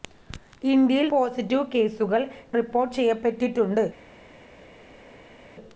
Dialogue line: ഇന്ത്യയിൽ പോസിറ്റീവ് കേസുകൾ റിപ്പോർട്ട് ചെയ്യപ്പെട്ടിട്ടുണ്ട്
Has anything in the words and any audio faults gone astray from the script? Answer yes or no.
no